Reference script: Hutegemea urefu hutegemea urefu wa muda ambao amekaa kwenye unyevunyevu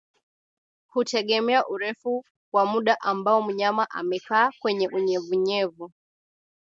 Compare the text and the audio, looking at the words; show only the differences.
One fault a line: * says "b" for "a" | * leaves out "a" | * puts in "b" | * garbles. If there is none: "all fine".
* leaves out "hutegemea urefu"
* puts in "mnyama"